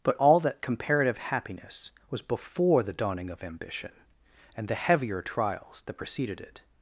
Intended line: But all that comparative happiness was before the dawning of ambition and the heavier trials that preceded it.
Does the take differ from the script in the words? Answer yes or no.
no